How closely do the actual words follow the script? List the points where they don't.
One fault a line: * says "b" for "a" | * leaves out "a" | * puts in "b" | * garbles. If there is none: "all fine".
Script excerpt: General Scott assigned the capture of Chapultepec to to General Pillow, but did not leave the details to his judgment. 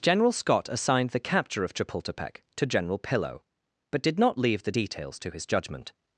* leaves out "to"